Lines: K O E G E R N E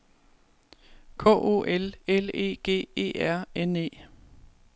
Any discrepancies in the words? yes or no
yes